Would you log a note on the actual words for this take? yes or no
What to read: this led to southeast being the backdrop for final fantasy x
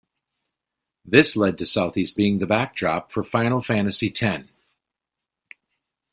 no